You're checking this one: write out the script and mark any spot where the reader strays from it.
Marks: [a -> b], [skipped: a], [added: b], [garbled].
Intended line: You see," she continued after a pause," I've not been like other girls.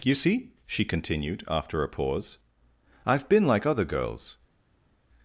You see," she continued after a pause," I've [skipped: not] been like other girls.